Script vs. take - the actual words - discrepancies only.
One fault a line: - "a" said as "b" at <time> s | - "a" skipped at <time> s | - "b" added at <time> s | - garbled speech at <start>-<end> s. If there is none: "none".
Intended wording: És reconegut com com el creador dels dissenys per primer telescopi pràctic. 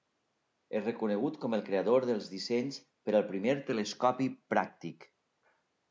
- "com" skipped at 1.6 s
- "al" added at 3.2 s